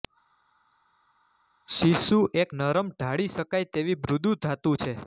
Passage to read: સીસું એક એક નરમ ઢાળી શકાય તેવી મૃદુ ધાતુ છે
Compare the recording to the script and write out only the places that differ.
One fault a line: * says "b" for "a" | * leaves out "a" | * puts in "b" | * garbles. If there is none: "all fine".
* leaves out "એક"